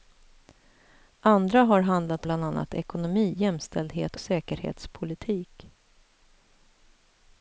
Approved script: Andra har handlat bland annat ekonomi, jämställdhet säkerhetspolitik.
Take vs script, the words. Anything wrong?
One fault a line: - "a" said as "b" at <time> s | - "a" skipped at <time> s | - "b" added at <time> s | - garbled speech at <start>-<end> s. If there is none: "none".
none